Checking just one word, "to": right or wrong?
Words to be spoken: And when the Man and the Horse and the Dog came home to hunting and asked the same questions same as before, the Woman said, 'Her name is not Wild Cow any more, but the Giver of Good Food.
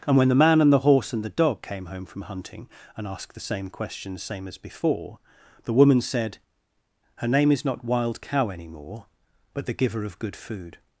wrong